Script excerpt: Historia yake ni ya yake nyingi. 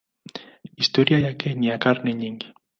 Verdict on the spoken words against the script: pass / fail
fail